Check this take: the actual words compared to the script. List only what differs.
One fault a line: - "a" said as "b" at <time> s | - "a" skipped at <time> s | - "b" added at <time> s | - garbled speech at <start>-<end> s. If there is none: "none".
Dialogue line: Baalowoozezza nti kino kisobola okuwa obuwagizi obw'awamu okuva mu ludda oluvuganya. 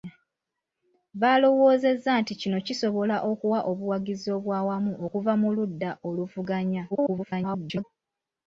- garbled speech at 6.9-7.8 s